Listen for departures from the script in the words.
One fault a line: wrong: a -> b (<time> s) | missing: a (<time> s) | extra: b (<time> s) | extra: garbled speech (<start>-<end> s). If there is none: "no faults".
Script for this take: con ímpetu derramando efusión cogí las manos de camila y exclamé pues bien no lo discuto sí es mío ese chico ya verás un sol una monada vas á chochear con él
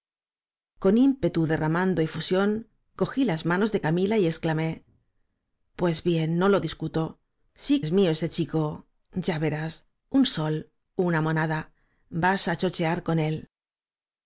no faults